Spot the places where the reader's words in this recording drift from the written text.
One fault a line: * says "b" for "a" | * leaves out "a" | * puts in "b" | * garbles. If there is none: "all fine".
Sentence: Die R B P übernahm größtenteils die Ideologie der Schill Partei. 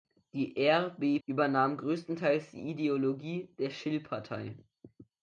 * leaves out "P"